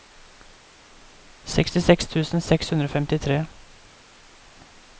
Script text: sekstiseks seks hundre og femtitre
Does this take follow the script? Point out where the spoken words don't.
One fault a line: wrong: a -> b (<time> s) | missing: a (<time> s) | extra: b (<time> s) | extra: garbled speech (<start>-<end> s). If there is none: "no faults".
extra: tusen (2.1 s)